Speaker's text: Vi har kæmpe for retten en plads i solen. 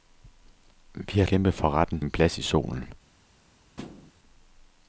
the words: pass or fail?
pass